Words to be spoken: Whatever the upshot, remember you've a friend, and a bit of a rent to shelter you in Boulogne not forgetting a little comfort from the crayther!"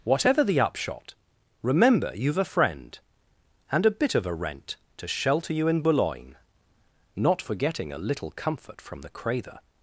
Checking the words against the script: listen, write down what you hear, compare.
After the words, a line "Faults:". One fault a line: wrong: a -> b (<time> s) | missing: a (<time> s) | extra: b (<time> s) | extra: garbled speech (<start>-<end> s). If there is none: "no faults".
Whatever the upshot, remember you've a friend, and a bit of a rent to shelter you in Boulogne not forgetting a little comfort from the crayther!"
Faults:
no faults